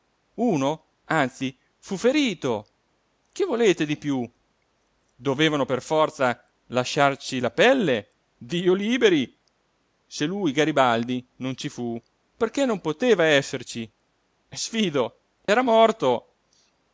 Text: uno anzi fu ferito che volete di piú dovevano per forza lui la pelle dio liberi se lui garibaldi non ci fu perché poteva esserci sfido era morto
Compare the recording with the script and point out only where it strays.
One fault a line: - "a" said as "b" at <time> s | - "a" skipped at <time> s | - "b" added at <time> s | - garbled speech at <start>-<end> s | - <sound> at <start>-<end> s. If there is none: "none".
- "lui" said as "lasciarci" at 6.7 s
- "non" added at 12.6 s
- dropout at 15.5-15.5 s